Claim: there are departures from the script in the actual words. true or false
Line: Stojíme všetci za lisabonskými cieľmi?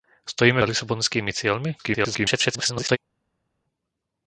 true